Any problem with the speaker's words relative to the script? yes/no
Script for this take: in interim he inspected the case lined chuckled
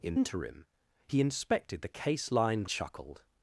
no